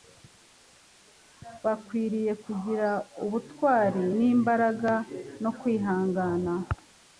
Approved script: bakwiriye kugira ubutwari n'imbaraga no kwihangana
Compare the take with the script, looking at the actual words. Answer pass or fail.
pass